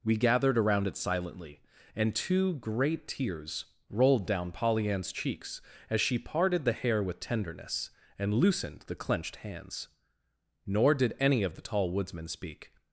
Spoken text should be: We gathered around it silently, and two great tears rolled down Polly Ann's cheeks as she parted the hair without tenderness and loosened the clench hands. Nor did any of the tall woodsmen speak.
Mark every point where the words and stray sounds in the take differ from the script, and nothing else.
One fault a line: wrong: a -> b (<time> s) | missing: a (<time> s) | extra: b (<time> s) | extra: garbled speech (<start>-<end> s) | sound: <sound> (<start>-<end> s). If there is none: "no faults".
wrong: without -> with (7.0 s)
wrong: clench -> clenched (8.9 s)